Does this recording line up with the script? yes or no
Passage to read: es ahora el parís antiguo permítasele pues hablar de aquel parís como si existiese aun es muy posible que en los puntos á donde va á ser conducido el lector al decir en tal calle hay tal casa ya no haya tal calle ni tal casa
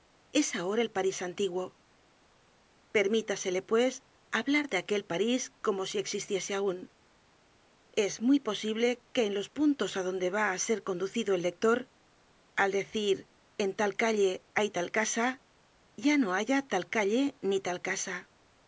yes